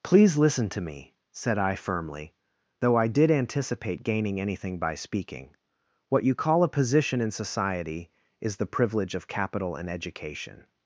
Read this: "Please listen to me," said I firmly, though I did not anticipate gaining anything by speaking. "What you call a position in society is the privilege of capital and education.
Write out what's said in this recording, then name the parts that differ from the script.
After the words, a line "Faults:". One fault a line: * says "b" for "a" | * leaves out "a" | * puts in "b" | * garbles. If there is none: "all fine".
"Please listen to me," said I firmly, though I did anticipate gaining anything by speaking. "What you call a position in society is the privilege of capital and education.
Faults:
* leaves out "not"